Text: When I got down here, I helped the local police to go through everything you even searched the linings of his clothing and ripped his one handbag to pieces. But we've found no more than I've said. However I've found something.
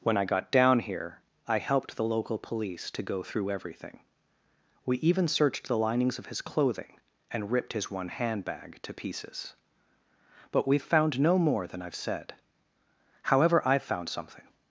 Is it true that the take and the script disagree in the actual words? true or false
true